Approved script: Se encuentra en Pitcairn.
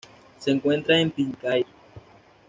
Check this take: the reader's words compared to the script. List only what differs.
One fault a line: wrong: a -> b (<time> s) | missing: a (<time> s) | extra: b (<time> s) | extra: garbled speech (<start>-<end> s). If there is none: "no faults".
no faults